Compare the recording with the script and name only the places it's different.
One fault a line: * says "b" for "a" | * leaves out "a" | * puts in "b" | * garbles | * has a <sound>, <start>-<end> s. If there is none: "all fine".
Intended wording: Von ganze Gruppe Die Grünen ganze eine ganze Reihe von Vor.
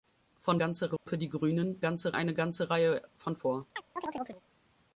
* has a dropout, 1.0-1.1 s
* has a chirp, 3.8-4.4 s